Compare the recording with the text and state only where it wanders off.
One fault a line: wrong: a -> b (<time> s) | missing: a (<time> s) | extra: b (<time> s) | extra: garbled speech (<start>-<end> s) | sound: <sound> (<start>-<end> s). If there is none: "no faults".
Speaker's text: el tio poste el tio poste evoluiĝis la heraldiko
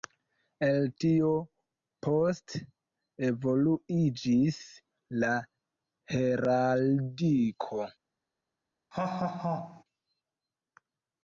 missing: el tio poste (2.6 s)
sound: laugh (8.9-9.8 s)